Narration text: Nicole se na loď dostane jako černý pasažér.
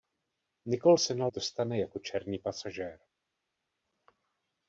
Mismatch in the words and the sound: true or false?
true